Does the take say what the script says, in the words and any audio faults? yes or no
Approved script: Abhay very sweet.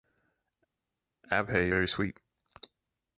yes